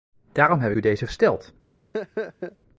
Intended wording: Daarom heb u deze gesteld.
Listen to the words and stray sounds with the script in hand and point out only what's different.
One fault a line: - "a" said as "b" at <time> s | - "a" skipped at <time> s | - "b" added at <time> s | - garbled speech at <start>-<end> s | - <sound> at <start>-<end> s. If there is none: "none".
- laugh at 1.9-2.6 s